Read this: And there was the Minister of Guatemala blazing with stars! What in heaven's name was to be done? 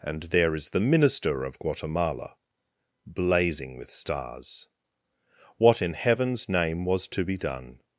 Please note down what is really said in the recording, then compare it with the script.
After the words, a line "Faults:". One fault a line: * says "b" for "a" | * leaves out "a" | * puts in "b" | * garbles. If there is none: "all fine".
And there is the Minister of Guatemala blazing with stars! What in heaven's name was to be done?
Faults:
* says "is" for "was"